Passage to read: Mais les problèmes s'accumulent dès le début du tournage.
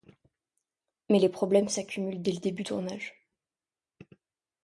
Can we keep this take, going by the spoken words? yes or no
no